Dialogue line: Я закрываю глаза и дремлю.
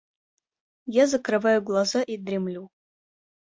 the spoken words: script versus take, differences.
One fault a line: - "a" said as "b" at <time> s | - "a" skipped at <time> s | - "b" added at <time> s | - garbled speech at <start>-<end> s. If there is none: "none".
none